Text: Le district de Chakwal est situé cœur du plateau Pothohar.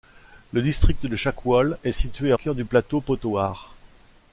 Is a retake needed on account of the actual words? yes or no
no